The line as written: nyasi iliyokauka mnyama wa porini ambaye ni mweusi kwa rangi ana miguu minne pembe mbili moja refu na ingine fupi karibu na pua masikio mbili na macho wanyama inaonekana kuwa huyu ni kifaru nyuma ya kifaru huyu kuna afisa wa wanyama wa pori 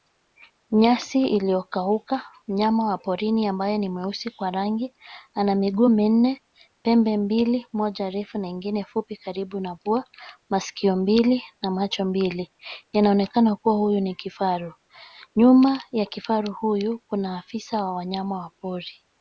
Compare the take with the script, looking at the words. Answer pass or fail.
fail